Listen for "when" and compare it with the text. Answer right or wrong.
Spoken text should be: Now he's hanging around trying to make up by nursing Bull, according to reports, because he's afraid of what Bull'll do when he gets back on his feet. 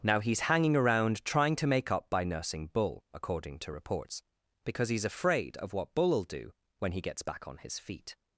right